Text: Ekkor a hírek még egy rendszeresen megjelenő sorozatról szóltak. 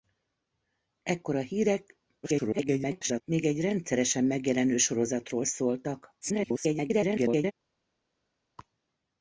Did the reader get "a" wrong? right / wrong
right